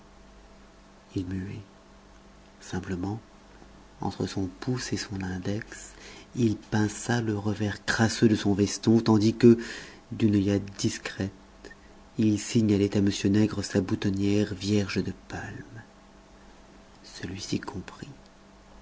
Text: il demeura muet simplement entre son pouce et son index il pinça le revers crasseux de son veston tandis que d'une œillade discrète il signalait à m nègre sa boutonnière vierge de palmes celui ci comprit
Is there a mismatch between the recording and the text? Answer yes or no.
yes